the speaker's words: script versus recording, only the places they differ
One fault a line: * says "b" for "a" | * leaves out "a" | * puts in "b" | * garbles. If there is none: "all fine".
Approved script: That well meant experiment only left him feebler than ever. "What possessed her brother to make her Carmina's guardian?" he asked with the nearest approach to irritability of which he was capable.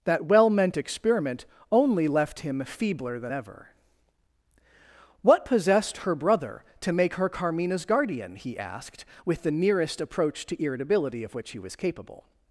all fine